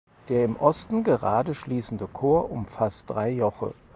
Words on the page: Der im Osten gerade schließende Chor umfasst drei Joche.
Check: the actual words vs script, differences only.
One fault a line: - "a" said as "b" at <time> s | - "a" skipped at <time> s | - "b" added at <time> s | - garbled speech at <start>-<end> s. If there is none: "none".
none